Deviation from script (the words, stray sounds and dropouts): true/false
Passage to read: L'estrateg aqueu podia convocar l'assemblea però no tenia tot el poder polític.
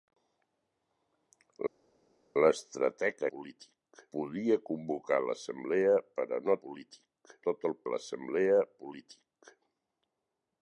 true